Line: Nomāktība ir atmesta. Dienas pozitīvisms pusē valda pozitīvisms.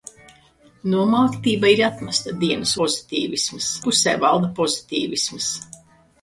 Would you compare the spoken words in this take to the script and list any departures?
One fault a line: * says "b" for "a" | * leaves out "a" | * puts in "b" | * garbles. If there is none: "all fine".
all fine